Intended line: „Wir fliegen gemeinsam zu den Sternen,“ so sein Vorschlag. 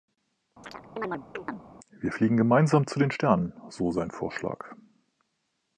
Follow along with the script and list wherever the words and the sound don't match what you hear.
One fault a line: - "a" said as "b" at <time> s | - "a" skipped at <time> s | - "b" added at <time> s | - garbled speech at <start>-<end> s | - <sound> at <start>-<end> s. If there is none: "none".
- chirp at 0.6-1.7 s